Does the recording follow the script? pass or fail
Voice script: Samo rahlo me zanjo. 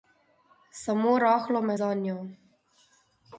pass